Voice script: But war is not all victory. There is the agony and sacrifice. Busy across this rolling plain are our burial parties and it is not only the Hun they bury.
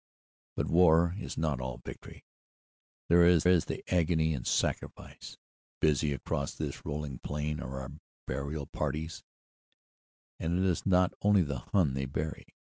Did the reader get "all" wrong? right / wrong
right